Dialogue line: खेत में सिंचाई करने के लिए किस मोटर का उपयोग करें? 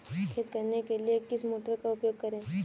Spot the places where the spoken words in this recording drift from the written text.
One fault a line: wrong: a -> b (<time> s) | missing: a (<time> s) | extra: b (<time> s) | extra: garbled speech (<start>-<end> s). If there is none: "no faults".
missing: में सिंचाई (0.5 s)